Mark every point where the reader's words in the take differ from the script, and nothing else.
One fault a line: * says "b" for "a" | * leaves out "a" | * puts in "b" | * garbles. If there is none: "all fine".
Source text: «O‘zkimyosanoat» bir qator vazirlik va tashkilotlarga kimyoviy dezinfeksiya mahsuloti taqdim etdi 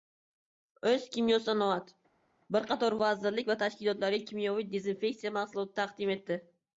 all fine